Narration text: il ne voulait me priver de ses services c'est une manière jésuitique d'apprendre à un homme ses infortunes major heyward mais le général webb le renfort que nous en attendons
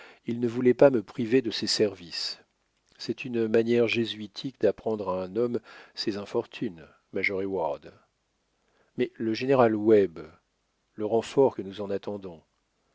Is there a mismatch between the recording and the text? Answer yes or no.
yes